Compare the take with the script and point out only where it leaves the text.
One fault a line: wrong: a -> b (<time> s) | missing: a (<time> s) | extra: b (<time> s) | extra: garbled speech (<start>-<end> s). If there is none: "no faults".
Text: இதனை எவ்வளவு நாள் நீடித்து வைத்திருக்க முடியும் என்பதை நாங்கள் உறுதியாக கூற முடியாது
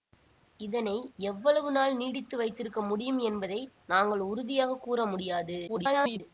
extra: garbled speech (5.7-6.2 s)